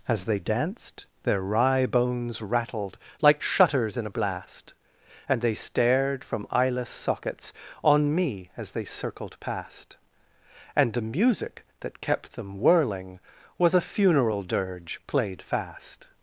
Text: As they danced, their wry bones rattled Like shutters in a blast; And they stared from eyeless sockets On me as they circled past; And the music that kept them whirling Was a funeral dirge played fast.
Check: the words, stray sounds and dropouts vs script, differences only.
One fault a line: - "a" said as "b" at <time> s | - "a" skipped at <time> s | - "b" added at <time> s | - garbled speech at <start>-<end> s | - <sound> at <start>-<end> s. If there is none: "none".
none